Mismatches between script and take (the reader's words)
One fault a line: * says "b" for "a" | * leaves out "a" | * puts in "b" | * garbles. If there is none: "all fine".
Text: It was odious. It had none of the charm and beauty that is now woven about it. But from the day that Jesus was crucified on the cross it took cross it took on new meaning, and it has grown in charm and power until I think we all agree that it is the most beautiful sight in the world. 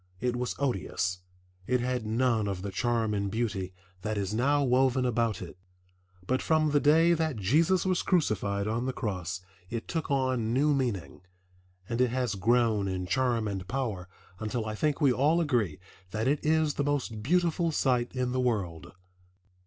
* leaves out "cross it took"